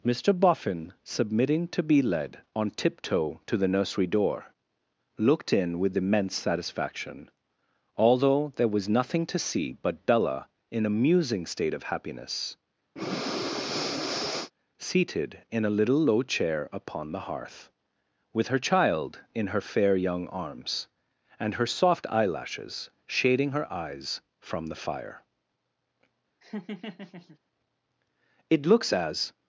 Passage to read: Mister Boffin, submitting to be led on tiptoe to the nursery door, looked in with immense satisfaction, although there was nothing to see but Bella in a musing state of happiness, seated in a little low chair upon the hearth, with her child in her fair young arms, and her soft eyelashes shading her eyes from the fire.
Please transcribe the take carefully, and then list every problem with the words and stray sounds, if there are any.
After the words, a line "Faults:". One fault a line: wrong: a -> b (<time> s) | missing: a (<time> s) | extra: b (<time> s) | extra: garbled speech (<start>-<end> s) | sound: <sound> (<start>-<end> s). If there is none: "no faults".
Mister Boffin, submitting to be led on tiptoe to the nursery door, looked in with immense satisfaction, although there was nothing to see but Bella in a musing state of happiness, seated in a little low chair upon the hearth, with her child in her fair young arms, and her soft eyelashes shading her eyes from the fire. 'It looks as
Faults:
sound: breath (13.0-14.5 s)
sound: laugh (26.4-27.4 s)
extra: It looks as (28.5 s)